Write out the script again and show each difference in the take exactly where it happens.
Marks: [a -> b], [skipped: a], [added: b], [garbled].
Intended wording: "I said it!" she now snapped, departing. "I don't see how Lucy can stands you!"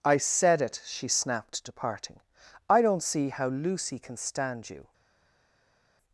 "I said it!" she [skipped: now] snapped, departing. "I don't see how Lucy can [stands -> stand] you!"